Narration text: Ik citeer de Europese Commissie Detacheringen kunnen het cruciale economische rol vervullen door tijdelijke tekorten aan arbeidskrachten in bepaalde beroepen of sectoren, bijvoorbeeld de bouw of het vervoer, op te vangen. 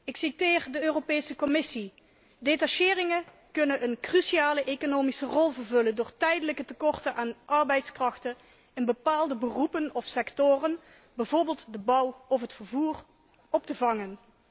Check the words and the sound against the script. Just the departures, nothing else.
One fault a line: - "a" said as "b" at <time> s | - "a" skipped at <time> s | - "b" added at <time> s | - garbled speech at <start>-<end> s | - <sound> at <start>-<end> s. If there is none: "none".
- "het" said as "een" at 3.8 s